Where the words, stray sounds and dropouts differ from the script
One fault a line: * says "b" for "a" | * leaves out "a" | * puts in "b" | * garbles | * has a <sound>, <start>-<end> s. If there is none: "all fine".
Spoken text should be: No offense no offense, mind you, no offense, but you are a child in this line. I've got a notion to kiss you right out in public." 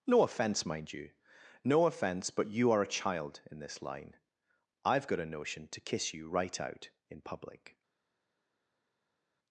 * leaves out "no offense"